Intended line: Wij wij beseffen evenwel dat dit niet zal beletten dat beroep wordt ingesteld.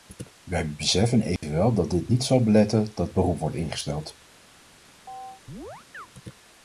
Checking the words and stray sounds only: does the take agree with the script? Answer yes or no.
no